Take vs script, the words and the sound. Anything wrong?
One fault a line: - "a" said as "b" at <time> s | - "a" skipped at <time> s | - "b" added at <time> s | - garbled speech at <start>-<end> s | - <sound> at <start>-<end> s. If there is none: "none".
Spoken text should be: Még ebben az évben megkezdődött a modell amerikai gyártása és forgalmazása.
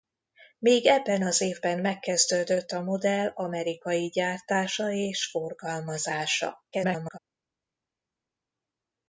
- garbled speech at 6.7-7.2 s